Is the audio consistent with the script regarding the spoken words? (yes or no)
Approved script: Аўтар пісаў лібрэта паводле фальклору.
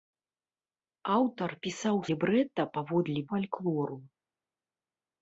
yes